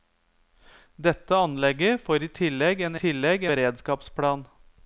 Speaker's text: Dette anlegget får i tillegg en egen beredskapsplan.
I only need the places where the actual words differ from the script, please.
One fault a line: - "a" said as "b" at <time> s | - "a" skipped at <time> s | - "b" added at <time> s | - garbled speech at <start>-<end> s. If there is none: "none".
- "egen" said as "tillegg" at 3.0 s